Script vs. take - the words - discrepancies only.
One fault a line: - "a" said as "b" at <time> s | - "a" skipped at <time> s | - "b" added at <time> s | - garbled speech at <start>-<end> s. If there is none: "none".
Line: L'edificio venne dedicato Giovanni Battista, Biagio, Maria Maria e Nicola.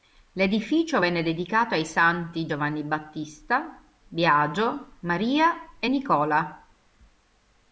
- "ai santi" added at 1.7 s
- "Maria" skipped at 5.7 s